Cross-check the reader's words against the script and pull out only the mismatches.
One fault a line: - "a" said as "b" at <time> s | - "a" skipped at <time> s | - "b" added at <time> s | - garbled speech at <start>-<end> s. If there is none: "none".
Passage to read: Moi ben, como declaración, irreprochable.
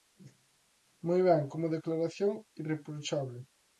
none